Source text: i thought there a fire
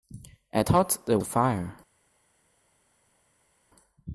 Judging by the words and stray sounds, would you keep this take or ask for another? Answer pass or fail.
pass